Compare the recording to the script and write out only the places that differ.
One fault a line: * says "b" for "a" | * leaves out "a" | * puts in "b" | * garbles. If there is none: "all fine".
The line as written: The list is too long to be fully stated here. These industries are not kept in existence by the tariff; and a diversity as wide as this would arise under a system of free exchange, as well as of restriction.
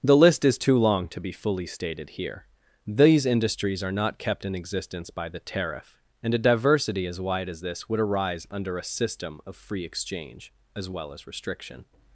* leaves out "of"